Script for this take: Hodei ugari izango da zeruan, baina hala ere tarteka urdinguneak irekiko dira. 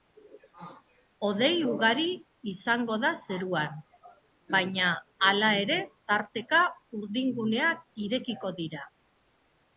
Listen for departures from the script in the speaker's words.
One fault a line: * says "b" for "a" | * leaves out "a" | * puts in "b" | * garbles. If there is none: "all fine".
all fine